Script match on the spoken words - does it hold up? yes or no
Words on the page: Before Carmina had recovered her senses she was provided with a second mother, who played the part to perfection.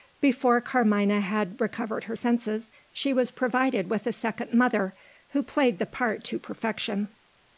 yes